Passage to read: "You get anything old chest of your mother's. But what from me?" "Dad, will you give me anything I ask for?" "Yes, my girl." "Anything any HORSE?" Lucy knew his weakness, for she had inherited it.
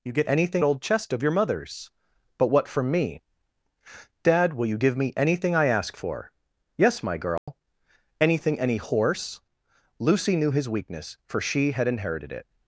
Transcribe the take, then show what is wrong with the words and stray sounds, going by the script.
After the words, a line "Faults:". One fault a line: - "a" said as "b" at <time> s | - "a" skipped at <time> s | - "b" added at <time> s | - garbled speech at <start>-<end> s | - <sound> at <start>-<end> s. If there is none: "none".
"You get anything old chest of your mother's. But what from me?" "Dad, will you give me anything I ask for?" "Yes, my girl." "Anything any HORSE?" Lucy knew his weakness, for she had inherited it.
Faults:
- dropout at 7.4-7.5 s